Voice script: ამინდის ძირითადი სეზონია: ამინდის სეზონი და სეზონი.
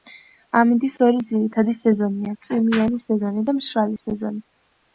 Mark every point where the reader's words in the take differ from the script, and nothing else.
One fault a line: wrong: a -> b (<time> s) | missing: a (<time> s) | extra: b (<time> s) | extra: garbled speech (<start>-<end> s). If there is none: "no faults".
extra: ორი (1.1 s)
wrong: ამინდის -> წვიმიანი (2.5 s)
extra: მშრალი (3.6 s)